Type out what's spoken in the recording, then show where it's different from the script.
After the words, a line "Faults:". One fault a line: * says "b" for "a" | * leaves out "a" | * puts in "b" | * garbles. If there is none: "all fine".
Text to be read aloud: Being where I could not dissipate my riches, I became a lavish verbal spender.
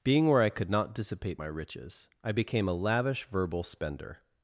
Being where I could not dissipate my riches, I became a lavish verbal spender.
Faults:
all fine